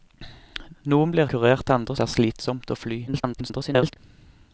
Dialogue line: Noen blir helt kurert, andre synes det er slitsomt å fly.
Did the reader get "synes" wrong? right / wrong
wrong